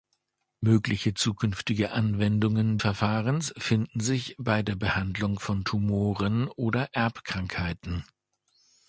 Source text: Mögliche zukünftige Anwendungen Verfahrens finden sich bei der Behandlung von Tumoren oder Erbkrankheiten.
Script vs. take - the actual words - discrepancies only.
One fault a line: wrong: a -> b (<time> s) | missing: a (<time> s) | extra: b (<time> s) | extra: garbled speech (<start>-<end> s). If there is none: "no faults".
no faults